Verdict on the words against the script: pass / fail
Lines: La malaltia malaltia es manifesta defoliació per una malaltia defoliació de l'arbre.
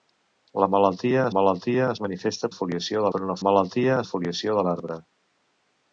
pass